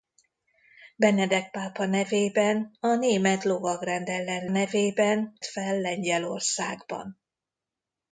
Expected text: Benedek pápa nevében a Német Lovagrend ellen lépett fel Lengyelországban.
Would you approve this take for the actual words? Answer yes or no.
no